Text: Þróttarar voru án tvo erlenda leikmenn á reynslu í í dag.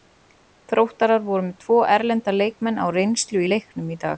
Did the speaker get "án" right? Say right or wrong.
wrong